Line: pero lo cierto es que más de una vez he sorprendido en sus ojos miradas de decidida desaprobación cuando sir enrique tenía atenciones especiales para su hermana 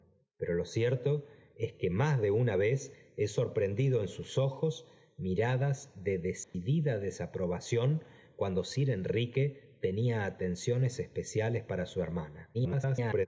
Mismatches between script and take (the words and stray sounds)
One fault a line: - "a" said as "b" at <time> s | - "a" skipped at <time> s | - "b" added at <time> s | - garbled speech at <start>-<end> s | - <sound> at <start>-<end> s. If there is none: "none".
- dropout at 6.4-6.5 s
- garbled speech at 12.5-13.3 s